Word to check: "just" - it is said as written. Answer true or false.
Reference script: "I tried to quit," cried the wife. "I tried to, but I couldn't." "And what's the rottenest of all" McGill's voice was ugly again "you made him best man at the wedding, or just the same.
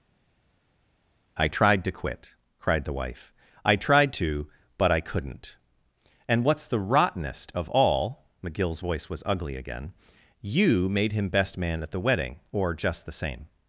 true